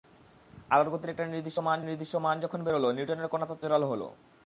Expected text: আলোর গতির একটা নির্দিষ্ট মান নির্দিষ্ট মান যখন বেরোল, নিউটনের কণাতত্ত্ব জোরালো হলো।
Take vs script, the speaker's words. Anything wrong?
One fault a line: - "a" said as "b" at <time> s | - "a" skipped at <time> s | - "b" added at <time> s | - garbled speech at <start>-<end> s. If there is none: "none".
none